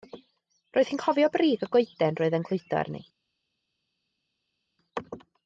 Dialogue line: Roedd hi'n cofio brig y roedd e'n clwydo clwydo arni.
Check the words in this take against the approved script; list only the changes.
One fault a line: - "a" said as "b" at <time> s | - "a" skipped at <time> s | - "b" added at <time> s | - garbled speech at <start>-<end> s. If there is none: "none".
- "goeden" added at 1.7 s
- "clwydo" skipped at 2.8 s